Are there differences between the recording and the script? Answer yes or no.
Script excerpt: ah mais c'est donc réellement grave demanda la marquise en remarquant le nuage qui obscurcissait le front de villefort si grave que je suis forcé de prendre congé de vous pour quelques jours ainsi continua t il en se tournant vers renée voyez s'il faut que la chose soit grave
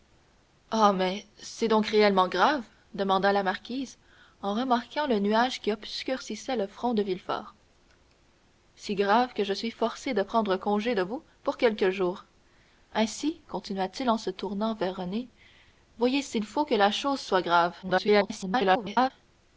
yes